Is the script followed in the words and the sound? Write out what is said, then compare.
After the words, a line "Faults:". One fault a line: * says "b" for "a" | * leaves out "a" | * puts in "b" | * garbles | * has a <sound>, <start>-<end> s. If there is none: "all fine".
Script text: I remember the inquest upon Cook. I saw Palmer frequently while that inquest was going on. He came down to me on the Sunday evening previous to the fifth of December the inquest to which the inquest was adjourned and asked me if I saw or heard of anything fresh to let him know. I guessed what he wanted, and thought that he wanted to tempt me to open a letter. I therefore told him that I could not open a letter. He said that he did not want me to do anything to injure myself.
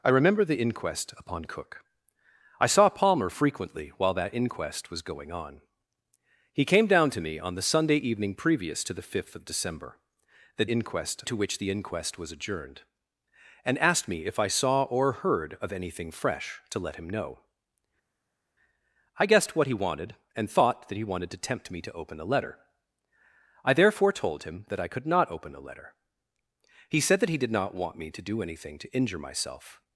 I remember the inquest upon Cook. I saw Palmer frequently while that inquest was going on. He came down to me on the Sunday evening previous to the fifth of December the inquest to which the inquest was adjourned and asked me if I saw or heard of anything fresh to let him know. I guessed what he wanted, and thought that he wanted to tempt me to open a letter. I therefore told him that I could not open a letter. He said that he did not want me to do anything to injure myself.
Faults:
all fine